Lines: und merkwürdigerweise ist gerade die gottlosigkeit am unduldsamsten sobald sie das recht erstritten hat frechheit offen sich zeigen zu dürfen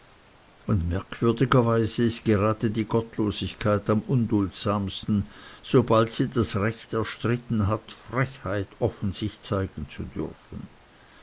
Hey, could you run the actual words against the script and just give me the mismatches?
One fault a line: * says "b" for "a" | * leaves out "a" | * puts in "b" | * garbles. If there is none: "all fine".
all fine